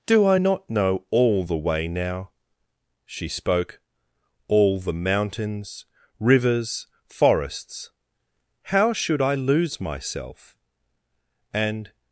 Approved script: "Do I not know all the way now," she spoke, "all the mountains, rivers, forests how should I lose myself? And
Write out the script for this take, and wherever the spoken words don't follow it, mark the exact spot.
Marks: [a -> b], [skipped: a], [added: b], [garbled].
"Do I not know all the way now," she spoke, "all the mountains, rivers, forests how should I lose myself? And